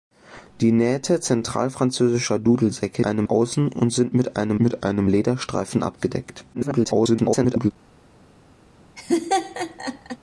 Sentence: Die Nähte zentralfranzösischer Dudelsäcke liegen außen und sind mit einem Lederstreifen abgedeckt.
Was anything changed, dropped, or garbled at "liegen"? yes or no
yes